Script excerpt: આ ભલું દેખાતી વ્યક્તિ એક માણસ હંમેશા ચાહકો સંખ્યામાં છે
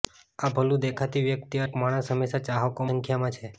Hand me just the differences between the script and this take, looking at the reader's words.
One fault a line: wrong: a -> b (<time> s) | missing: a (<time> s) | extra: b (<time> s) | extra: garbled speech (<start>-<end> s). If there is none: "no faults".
no faults